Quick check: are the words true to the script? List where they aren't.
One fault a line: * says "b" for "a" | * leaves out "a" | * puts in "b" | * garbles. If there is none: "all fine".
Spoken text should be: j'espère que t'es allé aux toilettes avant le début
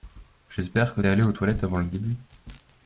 * leaves out "t'es"